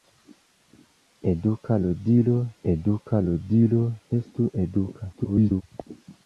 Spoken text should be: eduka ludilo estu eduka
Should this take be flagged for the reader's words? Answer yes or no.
yes